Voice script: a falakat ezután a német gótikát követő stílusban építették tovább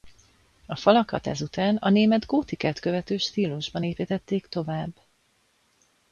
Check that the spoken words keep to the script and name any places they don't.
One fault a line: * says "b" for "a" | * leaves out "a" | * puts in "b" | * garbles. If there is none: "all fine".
all fine